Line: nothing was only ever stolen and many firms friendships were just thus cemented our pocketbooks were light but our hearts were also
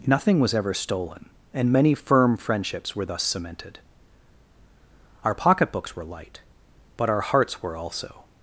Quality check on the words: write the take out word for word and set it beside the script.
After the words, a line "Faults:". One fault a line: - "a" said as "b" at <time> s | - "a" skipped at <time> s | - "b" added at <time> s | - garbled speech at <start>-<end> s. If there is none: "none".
nothing was ever stolen and many firm friendships were thus cemented our pocketbooks were light but our hearts were also
Faults:
- "only" skipped at 0.6 s
- "firms" said as "firm" at 1.9 s
- "just" skipped at 3.0 s